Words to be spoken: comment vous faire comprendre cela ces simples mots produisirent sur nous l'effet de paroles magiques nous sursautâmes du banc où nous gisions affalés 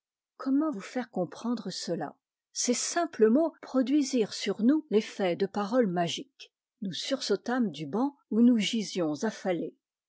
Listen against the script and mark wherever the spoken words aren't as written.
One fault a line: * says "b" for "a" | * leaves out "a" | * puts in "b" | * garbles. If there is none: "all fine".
all fine